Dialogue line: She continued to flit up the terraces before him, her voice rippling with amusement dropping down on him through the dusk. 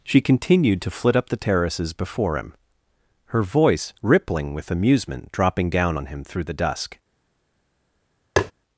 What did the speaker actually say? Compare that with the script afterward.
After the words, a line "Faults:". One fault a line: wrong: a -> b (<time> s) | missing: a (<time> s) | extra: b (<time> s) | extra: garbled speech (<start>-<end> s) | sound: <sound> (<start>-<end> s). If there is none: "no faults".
She continued to flit up the terraces before him, her voice rippling with amusement dropping down on him through the dusk.
Faults:
sound: tap (8.4-8.5 s)